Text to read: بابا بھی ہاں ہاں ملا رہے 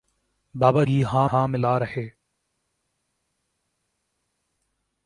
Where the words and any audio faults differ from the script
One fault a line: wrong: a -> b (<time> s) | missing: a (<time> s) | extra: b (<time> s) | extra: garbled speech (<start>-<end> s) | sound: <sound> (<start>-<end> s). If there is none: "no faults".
no faults